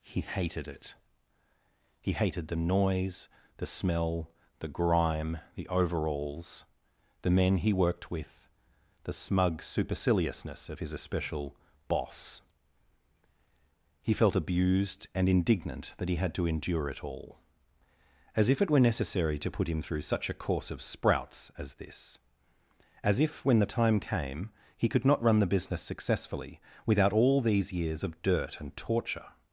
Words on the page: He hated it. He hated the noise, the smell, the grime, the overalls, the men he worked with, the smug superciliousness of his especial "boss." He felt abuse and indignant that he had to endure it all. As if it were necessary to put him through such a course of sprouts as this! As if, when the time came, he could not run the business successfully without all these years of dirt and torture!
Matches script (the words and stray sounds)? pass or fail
fail